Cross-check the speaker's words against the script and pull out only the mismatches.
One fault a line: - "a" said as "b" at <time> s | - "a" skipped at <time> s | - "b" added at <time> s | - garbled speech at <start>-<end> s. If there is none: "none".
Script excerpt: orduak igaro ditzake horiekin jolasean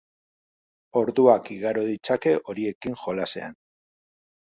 none